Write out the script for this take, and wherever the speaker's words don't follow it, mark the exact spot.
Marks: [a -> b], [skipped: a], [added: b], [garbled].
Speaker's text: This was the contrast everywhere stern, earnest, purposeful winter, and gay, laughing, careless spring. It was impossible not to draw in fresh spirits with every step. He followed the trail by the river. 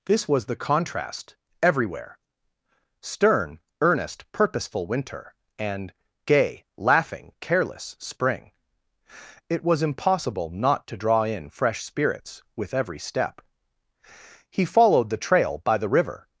This was the contrast everywhere stern, earnest, purposeful winter, and gay, laughing, careless spring. It was impossible not to draw in fresh spirits with every step. He followed the trail by the river.